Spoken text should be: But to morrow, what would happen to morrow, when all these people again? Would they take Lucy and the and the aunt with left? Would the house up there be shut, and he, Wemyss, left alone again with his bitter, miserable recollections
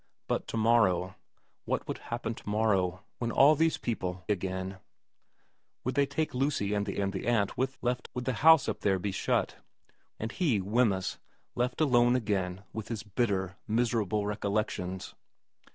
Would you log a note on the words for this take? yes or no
no